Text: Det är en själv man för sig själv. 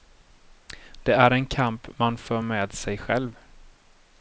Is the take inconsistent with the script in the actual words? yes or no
yes